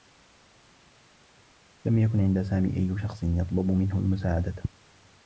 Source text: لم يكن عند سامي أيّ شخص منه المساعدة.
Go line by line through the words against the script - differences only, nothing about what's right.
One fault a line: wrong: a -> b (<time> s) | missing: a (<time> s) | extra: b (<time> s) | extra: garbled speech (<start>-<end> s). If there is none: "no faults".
extra: يطلب (3.2 s)